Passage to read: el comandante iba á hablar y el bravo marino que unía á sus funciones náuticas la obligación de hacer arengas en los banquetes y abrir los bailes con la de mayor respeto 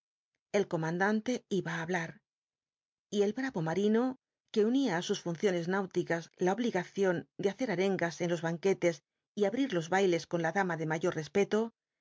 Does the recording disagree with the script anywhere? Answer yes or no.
yes